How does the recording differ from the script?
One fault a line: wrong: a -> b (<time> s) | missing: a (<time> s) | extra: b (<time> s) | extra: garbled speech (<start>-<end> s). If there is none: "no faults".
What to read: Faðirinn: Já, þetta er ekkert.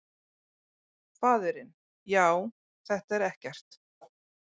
no faults